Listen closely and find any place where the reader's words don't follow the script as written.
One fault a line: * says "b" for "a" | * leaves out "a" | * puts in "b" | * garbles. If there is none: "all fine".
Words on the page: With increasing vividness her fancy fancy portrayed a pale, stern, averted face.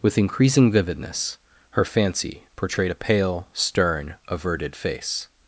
* leaves out "fancy"